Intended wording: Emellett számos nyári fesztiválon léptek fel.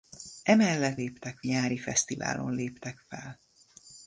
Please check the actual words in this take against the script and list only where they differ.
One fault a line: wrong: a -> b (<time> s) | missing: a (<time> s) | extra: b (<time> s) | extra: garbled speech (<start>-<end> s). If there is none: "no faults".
wrong: számos -> léptek (0.9 s)